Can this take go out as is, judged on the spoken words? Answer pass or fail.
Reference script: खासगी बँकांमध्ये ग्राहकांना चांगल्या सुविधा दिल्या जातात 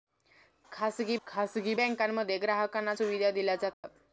fail